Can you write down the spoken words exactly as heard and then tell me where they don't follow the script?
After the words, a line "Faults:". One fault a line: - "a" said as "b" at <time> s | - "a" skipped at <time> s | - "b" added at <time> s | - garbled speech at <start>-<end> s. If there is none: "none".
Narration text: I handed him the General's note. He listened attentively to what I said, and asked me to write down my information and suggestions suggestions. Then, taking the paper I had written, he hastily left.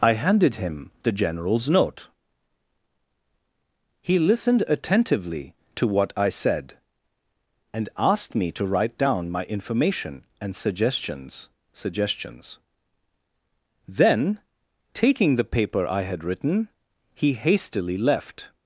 I handed him the General's note. He listened attentively to what I said, and asked me to write down my information and suggestions suggestions. Then, taking the paper I had written, he hastily left.
Faults:
none